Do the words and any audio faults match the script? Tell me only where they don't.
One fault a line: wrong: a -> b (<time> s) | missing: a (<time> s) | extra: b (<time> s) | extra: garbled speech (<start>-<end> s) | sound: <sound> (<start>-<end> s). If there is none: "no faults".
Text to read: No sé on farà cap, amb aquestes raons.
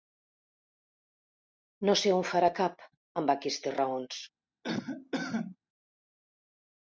sound: cough (4.6-5.6 s)